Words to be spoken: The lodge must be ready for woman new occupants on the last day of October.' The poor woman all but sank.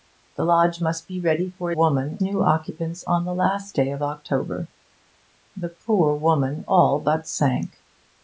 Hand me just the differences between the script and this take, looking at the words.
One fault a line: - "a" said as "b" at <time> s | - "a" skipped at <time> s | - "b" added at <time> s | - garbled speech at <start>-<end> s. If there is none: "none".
none